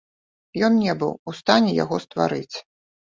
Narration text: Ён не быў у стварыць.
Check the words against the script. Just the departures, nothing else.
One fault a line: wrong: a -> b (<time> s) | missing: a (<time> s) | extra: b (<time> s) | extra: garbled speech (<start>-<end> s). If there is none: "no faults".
extra: стане яго (1.4 s)